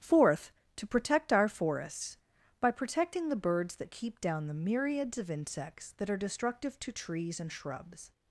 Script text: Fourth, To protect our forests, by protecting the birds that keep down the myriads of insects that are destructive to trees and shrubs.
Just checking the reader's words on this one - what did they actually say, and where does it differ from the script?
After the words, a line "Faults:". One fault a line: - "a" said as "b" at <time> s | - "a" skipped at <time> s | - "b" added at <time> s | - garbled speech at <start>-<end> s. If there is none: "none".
Fourth, To protect our forests, by protecting the birds that keep down the myriads of insects that are destructive to trees and shrubs.
Faults:
none